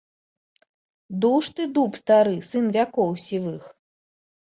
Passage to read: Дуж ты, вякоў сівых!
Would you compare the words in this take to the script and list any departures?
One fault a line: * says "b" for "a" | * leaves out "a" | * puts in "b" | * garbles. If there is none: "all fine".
* puts in "дуб стары сын"